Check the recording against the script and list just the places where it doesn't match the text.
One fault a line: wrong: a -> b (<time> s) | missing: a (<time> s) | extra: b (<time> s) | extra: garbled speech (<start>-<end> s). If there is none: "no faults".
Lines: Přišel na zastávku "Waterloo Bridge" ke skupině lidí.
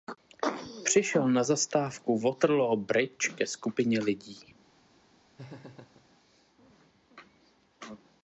no faults